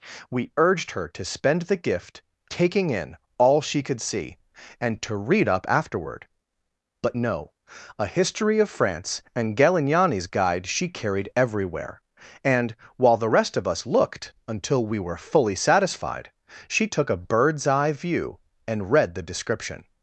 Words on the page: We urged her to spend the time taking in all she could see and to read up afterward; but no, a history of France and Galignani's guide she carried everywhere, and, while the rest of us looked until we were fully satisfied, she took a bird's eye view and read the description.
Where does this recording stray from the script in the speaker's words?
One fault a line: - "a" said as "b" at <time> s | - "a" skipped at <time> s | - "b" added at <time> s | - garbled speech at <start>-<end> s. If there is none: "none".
- "time" said as "gift" at 1.8 s